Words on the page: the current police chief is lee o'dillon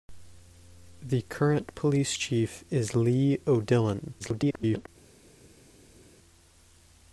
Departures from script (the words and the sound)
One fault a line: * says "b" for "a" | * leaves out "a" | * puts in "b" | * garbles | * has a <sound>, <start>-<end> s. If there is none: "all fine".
* garbles